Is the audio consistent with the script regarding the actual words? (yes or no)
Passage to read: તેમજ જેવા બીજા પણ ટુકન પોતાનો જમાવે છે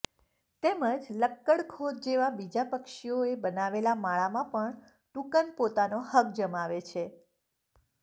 no